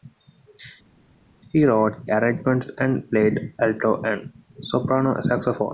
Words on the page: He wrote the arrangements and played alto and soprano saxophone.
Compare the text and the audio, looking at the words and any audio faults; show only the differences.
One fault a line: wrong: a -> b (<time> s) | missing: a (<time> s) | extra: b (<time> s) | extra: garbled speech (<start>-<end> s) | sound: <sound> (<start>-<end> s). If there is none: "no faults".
missing: the (2.1 s)